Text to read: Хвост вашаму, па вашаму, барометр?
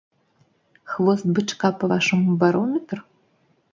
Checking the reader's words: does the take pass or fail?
fail